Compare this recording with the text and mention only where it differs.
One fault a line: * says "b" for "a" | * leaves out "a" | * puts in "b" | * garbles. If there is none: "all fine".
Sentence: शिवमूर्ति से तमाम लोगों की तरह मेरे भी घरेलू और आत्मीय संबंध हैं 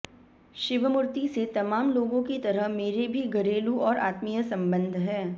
all fine